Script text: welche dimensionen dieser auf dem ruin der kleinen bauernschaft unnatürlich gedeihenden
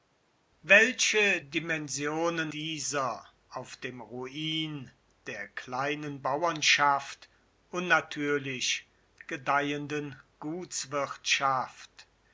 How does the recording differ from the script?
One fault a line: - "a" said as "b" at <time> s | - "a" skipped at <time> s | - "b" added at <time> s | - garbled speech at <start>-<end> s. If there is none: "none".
none